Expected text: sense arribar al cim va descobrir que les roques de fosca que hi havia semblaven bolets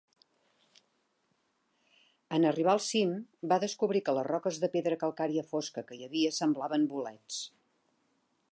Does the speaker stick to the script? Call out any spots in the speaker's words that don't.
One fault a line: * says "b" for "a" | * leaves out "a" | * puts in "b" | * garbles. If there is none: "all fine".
* says "en" for "sense"
* puts in "pedra calcària"